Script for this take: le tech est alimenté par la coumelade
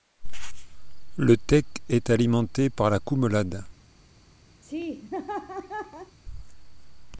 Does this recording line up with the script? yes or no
yes